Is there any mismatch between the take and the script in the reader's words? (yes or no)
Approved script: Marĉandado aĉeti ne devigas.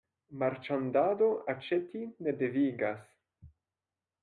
no